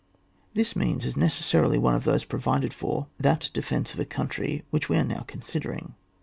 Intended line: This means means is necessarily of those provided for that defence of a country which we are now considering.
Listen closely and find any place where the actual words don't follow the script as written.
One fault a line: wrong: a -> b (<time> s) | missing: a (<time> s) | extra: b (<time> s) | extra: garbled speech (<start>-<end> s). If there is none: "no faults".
missing: means (1.1 s)
extra: one (1.8 s)